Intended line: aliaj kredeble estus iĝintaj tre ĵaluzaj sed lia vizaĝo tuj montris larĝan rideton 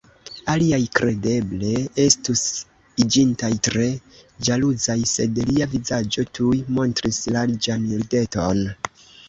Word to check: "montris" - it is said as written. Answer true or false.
true